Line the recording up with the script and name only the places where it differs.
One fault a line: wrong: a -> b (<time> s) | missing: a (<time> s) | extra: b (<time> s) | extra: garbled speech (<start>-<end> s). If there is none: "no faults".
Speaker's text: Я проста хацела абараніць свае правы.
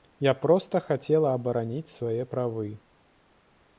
no faults